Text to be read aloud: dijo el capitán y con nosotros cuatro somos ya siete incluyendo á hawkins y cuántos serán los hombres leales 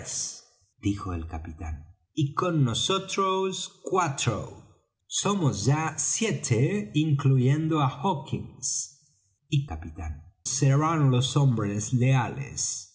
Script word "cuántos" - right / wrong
wrong